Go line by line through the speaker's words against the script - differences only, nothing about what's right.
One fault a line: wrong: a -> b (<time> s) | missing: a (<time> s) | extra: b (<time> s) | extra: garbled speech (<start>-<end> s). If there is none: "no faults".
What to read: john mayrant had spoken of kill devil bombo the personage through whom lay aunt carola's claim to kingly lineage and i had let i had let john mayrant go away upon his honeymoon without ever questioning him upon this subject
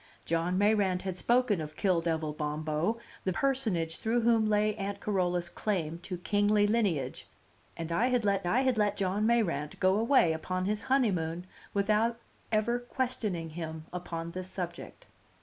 no faults